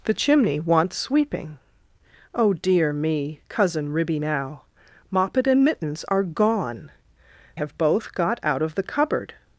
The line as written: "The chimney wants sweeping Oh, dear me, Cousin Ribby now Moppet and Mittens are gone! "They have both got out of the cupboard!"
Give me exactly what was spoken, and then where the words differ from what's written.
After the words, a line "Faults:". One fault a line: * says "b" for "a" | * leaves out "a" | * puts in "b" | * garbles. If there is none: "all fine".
"The chimney wants sweeping Oh, dear me, Cousin Ribby now Moppet and Mittens are gone! "Have both got out of the cupboard!"
Faults:
* leaves out "They"